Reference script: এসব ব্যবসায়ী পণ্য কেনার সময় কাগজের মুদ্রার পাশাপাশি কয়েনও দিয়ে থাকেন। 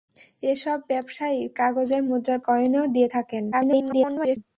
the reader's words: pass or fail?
fail